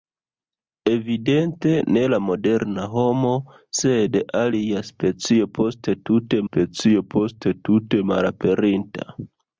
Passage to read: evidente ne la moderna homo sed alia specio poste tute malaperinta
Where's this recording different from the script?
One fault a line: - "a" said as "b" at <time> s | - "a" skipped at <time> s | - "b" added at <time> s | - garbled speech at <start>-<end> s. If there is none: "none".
- "specio poste tute" added at 6.5 s